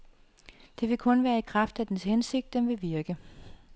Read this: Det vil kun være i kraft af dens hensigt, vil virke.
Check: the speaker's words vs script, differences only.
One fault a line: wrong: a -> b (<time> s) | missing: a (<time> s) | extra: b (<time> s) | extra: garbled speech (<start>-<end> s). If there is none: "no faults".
extra: den (2.5 s)